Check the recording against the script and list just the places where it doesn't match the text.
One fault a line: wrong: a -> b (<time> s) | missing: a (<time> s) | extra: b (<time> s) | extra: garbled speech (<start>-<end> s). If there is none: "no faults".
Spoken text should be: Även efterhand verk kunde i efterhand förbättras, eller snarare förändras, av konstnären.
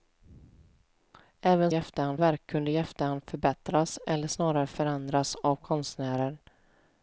no faults